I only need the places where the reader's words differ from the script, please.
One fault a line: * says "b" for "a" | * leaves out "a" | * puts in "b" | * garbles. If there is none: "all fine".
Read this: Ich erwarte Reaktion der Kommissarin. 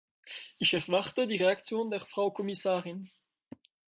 * puts in "die"
* puts in "Frau"